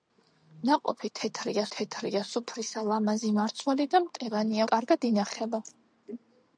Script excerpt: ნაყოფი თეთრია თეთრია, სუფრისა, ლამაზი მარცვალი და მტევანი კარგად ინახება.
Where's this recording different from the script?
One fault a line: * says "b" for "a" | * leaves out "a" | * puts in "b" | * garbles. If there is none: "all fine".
all fine